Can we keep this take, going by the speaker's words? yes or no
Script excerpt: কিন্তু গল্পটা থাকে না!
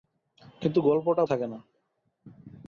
yes